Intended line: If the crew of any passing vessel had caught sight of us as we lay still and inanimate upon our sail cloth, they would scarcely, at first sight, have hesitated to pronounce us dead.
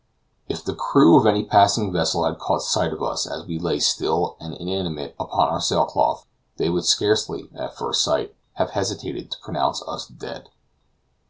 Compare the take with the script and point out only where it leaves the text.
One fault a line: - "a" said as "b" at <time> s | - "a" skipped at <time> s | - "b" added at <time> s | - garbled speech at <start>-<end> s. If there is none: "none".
none